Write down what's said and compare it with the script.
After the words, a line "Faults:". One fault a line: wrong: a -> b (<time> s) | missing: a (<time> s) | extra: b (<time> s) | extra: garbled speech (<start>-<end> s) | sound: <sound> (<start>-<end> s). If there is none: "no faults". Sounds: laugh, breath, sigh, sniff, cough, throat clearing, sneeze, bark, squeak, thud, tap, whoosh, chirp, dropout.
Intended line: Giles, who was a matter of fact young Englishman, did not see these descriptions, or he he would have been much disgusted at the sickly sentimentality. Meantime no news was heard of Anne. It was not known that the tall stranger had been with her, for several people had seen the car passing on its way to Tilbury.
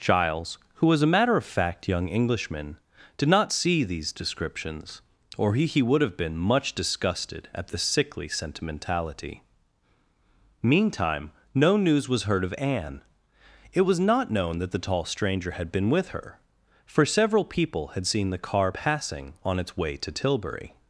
Giles, who was a matter of fact young Englishman, did not see these descriptions, or he he would have been much disgusted at the sickly sentimentality. Meantime no news was heard of Anne. It was not known that the tall stranger had been with her, for several people had seen the car passing on its way to Tilbury.
Faults:
no faults